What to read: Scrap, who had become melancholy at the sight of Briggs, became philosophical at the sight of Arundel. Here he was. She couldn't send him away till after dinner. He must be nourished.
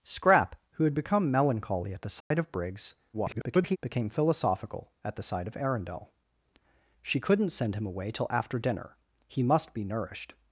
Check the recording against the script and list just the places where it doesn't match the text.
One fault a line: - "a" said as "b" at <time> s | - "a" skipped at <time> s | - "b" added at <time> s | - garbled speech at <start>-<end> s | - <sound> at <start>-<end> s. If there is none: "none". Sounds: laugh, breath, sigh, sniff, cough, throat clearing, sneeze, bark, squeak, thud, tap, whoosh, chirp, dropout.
- dropout at 2.2-2.3 s
- garbled speech at 3.1-3.8 s
- "Here he was" skipped at 6.1 s